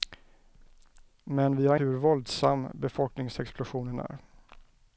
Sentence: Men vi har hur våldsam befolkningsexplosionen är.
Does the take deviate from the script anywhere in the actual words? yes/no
no